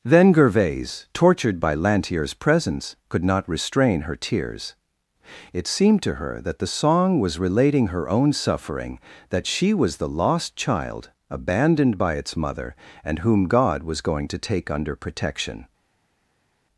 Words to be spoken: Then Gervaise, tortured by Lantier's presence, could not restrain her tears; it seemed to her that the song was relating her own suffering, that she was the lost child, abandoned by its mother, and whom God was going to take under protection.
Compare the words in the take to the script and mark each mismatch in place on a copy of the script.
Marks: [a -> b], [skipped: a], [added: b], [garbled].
Then Gervaise, tortured by Lantier's presence, could not restrain her tears; it seemed to her that the song was relating her own suffering, that she was the lost child, abandoned by its mother, and whom God was going to take under protection.